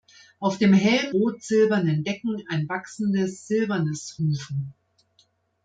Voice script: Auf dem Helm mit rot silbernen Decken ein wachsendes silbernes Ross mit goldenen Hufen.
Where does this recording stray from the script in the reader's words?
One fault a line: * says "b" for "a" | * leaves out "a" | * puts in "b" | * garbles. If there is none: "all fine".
* leaves out "mit"
* leaves out "Ross mit goldenen"